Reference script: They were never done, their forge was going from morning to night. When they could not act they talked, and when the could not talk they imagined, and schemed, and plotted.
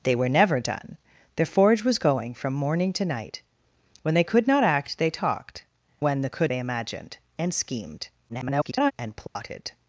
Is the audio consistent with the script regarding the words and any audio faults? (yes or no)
no